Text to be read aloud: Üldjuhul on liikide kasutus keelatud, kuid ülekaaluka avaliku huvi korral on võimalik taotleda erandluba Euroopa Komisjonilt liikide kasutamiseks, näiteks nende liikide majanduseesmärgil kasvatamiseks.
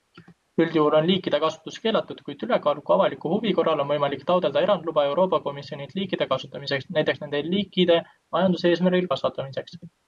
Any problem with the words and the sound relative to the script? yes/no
no